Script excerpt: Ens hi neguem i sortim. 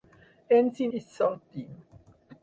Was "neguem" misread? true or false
true